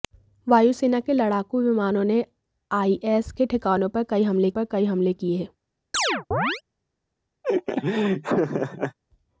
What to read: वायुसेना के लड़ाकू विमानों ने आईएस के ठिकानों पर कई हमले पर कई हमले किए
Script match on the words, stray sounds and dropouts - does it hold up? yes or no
no